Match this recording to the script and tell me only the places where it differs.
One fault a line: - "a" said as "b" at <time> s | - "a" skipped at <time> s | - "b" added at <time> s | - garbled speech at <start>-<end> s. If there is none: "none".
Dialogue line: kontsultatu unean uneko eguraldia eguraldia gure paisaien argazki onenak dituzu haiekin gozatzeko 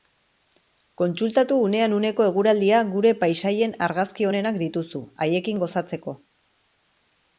- "eguraldia" skipped at 2.8 s